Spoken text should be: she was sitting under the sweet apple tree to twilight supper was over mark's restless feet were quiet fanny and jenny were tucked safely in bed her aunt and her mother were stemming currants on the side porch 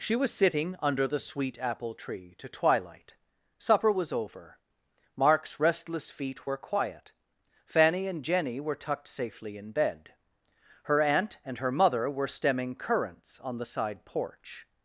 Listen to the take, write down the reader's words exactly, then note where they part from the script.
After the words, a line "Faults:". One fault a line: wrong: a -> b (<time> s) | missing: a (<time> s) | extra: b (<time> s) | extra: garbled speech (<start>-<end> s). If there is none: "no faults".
she was sitting under the sweet apple tree to twilight supper was over mark's restless feet were quiet fanny and jenny were tucked safely in bed her aunt and her mother were stemming currants on the side porch
Faults:
no faults